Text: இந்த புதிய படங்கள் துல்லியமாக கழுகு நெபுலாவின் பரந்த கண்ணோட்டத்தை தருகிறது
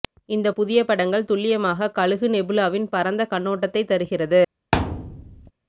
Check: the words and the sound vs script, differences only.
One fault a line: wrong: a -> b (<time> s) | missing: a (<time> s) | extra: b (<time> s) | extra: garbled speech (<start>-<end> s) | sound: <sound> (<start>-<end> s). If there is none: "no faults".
sound: thud (4.7-5.5 s)